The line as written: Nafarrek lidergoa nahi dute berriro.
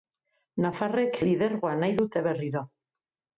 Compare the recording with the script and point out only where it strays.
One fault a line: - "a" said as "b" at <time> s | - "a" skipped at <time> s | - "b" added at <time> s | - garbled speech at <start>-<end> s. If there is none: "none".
none